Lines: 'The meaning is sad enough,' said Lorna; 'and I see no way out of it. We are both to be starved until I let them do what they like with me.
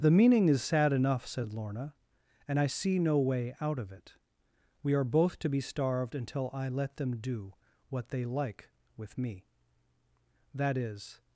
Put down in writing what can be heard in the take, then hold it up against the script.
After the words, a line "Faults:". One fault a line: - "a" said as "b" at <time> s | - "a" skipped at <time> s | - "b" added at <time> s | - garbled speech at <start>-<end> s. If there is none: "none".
'The meaning is sad enough,' said Lorna; 'and I see no way out of it. We are both to be starved until I let them do what they like with me. 'That is
Faults:
- "That is" added at 10.6 s